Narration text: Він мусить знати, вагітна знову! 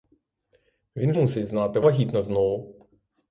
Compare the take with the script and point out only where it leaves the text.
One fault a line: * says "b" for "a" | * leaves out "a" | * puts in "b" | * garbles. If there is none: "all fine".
all fine